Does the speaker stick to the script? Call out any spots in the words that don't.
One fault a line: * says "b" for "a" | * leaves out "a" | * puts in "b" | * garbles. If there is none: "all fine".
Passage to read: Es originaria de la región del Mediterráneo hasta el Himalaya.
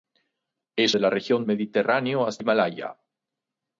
* leaves out "originaria"
* leaves out "del"
* leaves out "el"